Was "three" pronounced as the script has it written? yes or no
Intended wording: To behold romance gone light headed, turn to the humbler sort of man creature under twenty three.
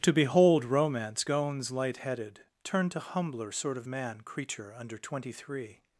yes